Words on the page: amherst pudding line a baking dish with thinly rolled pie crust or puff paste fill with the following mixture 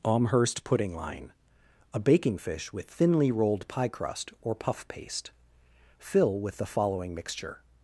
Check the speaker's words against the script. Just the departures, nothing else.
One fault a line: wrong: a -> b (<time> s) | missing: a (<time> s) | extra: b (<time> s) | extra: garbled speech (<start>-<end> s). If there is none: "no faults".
wrong: dish -> fish (2.4 s)